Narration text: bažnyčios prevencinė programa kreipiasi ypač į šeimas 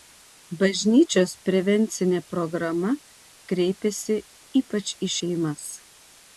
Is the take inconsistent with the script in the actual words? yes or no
no